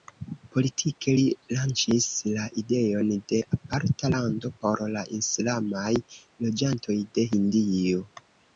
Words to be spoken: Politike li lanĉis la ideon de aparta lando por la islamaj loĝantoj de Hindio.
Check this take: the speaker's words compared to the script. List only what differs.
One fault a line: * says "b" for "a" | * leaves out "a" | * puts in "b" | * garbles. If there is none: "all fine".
all fine